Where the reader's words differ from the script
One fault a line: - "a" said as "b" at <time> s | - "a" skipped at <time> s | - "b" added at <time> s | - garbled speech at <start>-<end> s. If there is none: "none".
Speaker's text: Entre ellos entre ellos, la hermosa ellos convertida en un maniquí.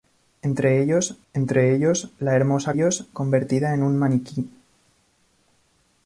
none